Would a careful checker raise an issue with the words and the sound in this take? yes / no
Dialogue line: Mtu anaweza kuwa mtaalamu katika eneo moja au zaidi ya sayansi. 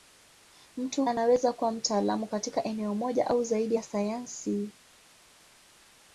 no